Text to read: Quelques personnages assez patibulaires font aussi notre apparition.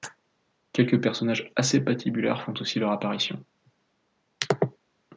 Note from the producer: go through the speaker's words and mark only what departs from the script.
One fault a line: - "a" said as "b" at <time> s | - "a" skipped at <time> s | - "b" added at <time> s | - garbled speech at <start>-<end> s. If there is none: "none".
- "notre" said as "leur" at 2.8 s